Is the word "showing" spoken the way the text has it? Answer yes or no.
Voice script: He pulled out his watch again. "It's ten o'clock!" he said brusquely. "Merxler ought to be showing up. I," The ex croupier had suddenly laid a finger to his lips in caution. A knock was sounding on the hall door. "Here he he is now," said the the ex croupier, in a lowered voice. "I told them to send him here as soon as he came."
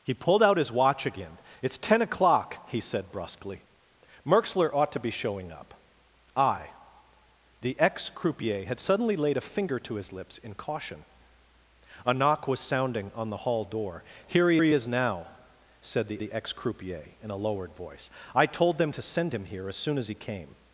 yes